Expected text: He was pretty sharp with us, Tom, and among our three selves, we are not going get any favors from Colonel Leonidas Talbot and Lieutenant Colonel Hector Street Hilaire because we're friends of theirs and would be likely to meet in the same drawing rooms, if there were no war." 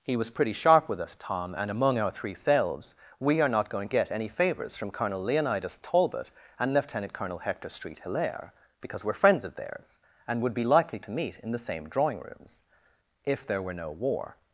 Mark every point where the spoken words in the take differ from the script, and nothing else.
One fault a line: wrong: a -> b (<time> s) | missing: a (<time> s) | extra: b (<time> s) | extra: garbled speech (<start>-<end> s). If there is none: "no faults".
no faults